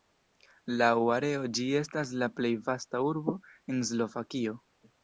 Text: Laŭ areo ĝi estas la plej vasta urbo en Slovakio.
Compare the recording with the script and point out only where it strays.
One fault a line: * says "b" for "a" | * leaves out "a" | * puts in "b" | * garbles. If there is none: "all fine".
all fine